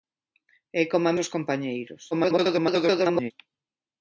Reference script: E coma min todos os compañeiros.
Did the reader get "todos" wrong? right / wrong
wrong